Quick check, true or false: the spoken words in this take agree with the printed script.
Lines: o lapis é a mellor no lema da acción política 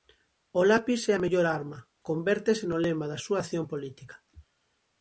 false